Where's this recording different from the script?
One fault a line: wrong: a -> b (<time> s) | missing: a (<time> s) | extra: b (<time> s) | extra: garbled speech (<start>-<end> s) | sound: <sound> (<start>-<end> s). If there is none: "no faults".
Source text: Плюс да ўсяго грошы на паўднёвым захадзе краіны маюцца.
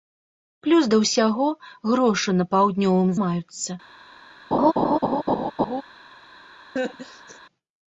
missing: захадзе краіны (3.1 s)
sound: laugh (4.5-5.8 s)
sound: laugh (6.8-7.4 s)